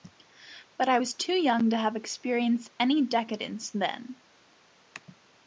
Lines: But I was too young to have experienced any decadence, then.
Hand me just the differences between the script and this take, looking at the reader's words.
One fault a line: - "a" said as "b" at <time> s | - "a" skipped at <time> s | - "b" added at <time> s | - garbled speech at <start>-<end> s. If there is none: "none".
none